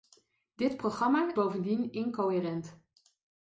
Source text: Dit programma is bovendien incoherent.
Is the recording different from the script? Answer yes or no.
yes